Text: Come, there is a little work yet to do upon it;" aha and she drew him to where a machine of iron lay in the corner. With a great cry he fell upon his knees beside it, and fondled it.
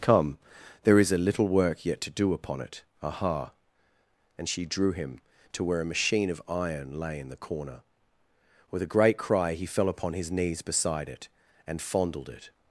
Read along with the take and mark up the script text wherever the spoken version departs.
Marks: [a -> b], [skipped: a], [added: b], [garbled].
Come, there is a little work yet to do upon it;" aha and she drew him to where a machine of iron lay in the corner. With a great cry he fell upon his knees beside it, and fondled it.